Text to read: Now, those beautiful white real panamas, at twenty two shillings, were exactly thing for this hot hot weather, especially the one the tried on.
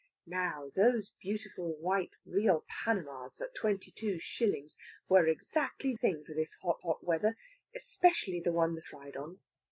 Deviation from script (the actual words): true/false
false